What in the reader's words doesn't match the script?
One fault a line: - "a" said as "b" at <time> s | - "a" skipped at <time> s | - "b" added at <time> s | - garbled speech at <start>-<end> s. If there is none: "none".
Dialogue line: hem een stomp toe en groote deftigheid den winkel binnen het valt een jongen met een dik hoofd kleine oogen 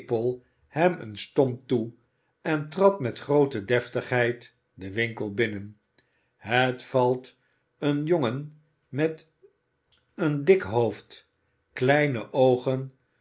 - "trad met" added at 2.7 s